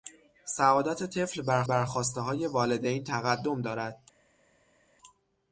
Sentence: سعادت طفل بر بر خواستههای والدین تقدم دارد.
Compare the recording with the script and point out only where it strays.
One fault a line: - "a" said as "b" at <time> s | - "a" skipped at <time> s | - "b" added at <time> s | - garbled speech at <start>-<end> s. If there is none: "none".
none